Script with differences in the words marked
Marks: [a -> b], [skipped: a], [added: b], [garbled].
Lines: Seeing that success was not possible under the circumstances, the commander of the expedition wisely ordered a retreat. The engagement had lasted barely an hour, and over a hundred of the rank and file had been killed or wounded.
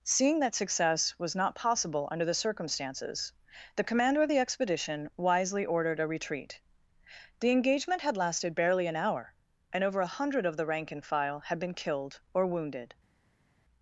Seeing that success was not possible under the circumstances, the commander of the expedition wisely ordered a retreat. The engagement had lasted barely an hour, and over a hundred of the rank and file had been killed or wounded.